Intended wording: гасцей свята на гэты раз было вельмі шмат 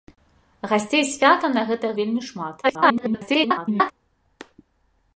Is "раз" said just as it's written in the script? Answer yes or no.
no